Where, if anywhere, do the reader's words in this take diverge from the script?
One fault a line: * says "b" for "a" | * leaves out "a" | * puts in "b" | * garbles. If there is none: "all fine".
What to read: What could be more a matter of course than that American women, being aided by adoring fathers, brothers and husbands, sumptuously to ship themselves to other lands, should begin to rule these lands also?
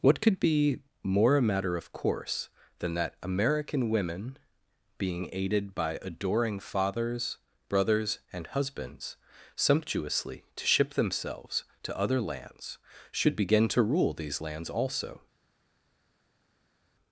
all fine